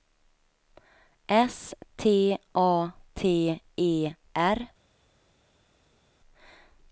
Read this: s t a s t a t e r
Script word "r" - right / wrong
right